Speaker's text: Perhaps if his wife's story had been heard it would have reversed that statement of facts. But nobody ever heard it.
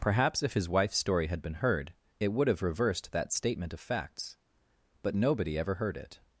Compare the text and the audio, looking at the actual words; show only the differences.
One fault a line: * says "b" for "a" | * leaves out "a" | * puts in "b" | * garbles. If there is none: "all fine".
all fine